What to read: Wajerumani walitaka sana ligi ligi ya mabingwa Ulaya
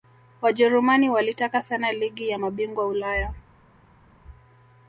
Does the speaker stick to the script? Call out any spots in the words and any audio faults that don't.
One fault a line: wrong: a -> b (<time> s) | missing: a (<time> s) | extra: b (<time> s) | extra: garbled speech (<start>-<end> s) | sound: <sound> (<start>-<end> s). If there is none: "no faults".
missing: ligi (2.3 s)